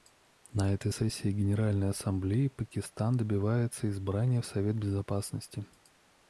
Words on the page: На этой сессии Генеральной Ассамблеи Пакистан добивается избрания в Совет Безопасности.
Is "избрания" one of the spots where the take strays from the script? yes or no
no